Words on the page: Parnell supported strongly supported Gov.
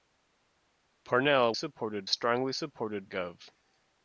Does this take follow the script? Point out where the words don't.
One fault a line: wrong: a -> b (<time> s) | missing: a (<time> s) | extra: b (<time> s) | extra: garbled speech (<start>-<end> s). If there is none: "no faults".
no faults